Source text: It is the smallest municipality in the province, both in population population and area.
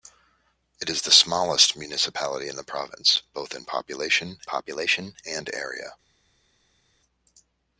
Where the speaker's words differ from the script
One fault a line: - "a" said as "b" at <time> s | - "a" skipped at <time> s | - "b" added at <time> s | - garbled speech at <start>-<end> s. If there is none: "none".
none